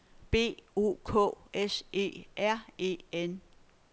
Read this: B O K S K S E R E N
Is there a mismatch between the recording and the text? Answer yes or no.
yes